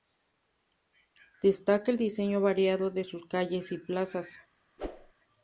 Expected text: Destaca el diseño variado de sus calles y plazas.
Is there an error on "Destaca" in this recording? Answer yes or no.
no